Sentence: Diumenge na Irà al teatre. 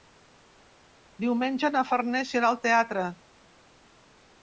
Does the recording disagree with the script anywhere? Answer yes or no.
yes